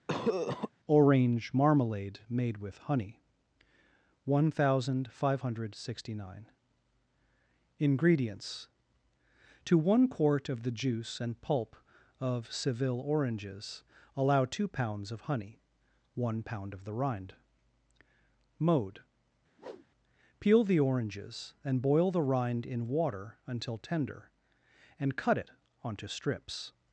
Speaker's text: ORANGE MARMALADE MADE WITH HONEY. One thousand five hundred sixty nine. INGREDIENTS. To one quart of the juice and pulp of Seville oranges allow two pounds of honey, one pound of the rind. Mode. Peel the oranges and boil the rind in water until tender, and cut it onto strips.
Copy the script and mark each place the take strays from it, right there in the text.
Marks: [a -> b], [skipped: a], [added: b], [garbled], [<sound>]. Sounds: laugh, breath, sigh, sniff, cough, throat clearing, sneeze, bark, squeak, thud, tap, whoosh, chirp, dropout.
[cough] ORANGE MARMALADE MADE WITH HONEY. One thousand five hundred sixty nine. INGREDIENTS. To one quart of the juice and pulp of Seville oranges allow two pounds of honey, one pound of the rind. Mode. [whoosh] Peel the oranges and boil the rind in water until tender, and cut it onto strips.